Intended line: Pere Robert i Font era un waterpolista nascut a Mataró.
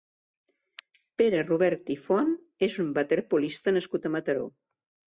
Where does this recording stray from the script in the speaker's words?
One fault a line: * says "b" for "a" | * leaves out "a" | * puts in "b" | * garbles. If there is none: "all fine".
* says "és" for "era"